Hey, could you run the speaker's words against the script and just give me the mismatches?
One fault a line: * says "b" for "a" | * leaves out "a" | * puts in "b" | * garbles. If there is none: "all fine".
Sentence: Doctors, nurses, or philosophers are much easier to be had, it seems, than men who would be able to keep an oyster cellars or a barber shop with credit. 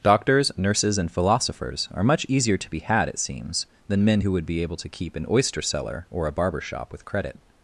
* says "and" for "or"
* says "cellar" for "cellars"